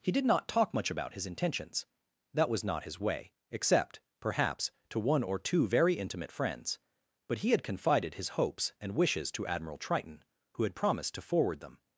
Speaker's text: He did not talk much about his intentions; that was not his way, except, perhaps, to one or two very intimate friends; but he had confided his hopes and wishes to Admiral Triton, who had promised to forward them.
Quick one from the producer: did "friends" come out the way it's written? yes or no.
yes